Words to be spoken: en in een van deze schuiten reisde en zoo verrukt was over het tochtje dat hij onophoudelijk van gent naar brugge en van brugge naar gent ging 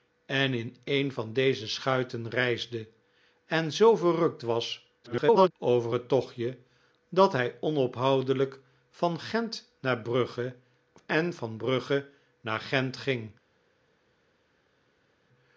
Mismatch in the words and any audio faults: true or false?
true